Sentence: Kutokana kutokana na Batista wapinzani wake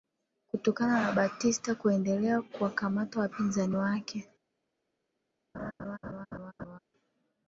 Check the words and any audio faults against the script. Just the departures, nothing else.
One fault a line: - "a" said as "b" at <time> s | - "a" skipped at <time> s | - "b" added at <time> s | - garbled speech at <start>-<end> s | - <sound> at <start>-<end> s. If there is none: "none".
- "kutokana" skipped at 1.0 s
- "kuendelea kuwakamata" added at 1.8 s
- laugh at 5.5-6.8 s